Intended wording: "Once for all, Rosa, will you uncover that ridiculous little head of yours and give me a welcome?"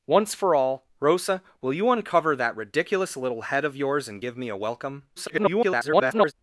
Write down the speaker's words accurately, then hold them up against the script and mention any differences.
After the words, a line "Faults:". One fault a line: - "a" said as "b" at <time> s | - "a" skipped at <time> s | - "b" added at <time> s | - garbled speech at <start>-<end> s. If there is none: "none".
"Once for all, Rosa, will you uncover that ridiculous little head of yours and give me a welcome?" [garbled]
Faults:
- garbled speech at 5.2-6.3 s